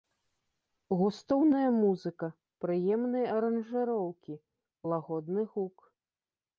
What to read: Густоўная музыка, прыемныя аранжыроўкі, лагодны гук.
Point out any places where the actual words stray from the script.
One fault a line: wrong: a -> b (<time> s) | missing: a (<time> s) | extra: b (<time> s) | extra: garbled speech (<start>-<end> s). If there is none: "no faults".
no faults